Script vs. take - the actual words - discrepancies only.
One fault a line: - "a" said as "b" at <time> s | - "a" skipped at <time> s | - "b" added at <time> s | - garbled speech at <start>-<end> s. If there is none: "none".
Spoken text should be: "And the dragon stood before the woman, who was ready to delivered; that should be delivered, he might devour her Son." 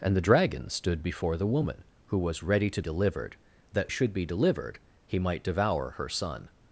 none